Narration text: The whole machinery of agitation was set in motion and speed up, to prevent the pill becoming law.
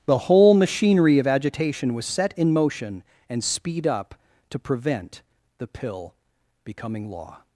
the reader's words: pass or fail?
pass